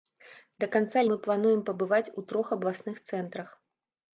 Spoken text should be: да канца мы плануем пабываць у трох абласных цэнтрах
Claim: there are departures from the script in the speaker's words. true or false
false